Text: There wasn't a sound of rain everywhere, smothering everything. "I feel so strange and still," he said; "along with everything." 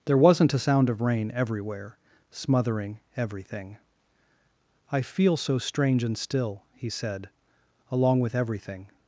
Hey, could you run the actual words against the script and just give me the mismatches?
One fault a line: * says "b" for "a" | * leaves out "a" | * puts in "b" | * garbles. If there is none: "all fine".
all fine